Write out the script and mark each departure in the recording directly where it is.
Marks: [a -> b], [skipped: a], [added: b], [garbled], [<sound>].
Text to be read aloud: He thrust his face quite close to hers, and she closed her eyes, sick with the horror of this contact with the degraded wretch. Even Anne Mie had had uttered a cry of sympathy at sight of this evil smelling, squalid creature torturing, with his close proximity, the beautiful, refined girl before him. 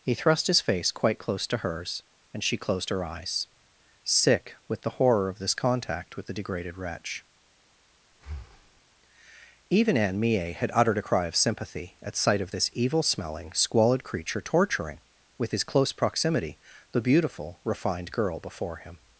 He thrust his face quite close to hers, and she closed her eyes, sick with the horror of this contact with the degraded wretch. [breath] Even Anne Mie had [skipped: had] uttered a cry of sympathy at sight of this evil smelling, squalid creature torturing, with his close proximity, the beautiful, refined girl before him.